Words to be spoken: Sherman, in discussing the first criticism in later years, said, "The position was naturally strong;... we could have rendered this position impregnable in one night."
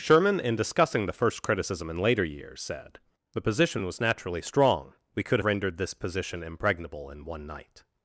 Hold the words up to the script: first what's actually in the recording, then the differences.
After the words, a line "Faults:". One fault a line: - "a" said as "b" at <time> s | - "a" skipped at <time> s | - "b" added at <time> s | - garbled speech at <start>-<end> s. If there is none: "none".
Sherman, in discussing the first criticism in later years, said, "The position was naturally strong;... we could rendered this position impregnable in one night."
Faults:
- "have" skipped at 5.4 s